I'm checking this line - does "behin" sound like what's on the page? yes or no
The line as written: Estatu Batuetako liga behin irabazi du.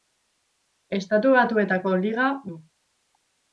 no